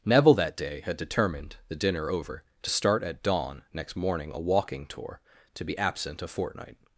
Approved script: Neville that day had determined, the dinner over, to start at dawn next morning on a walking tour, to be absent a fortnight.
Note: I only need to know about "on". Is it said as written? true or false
false